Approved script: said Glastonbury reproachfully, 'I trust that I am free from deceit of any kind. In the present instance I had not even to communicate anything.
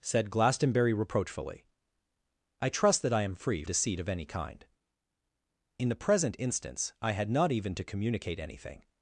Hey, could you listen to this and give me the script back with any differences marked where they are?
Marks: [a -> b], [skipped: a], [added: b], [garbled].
said Glastonbury reproachfully, 'I trust that I am free [skipped: from] deceit of any kind. In the present instance I had not even to communicate anything.